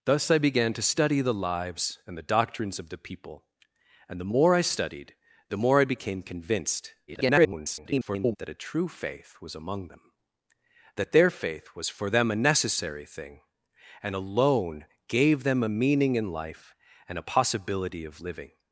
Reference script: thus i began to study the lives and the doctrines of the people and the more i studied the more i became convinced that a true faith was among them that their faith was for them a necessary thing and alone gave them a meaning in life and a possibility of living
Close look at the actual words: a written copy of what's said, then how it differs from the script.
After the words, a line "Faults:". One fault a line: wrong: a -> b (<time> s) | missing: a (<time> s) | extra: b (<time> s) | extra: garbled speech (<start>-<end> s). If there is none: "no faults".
thus i began to study the lives and the doctrines of the people and the more i studied the more i became convinced [garbled] that a true faith was among them that their faith was for them a necessary thing and alone gave them a meaning in life and a possibility of living
Faults:
extra: garbled speech (7.1-8.4 s)